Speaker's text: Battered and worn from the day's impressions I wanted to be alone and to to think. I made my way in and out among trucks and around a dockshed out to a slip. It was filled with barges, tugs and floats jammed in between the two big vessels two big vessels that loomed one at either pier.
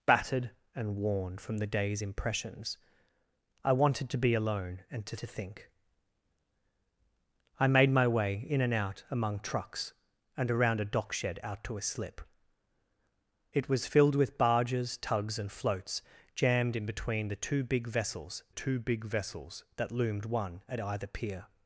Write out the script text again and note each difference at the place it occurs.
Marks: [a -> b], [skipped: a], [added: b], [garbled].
Battered and worn from the day's impressions I wanted to be alone and to to think. I made my way in and out among trucks and around a dockshed out to a slip. It was filled with barges, tugs and floats jammed in between the two big vessels two big vessels that loomed one at either pier.